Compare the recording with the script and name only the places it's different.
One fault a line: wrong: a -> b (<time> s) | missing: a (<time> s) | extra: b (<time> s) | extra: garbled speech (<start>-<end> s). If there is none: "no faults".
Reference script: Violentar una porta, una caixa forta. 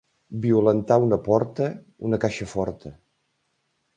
no faults